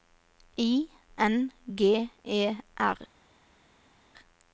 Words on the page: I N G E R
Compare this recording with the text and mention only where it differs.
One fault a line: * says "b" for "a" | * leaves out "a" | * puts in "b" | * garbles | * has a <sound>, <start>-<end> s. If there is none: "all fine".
all fine